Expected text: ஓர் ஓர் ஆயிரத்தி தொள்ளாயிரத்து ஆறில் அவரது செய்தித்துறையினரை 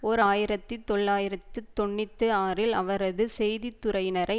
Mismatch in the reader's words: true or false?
true